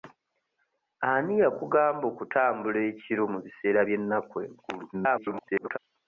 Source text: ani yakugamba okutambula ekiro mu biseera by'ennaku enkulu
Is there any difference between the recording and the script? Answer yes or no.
yes